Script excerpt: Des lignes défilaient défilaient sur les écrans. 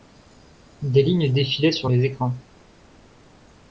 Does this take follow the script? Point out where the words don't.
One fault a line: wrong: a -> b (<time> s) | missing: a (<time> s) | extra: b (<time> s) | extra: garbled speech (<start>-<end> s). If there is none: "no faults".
missing: défilaient (1.7 s)